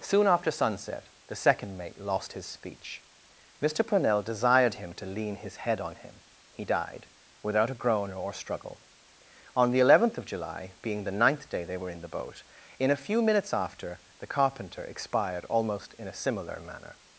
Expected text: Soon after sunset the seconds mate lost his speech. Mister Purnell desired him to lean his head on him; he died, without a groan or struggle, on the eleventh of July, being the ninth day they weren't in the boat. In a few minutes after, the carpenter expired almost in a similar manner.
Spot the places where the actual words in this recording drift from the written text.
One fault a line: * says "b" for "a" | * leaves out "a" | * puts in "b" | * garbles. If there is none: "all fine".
* says "second" for "seconds"
* says "were" for "weren't"